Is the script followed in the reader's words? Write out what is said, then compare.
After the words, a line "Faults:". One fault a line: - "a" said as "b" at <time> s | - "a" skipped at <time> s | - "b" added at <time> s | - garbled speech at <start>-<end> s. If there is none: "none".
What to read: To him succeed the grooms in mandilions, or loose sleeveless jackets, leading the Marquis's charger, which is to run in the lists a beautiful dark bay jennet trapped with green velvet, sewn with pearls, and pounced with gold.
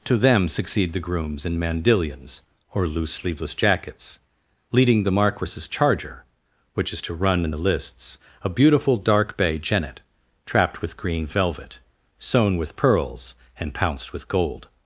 To them succeed the grooms in mandilions, or loose sleeveless jackets, leading the Marquis's charger, which is to run in the lists a beautiful dark bay jennet trapped with green velvet, sewn with pearls, and pounced with gold.
Faults:
- "him" said as "them" at 0.2 s